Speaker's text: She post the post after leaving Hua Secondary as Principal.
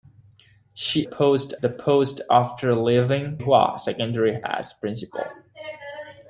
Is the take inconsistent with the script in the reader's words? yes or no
no